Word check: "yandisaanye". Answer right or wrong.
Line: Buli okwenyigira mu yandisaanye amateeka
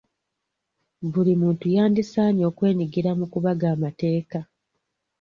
wrong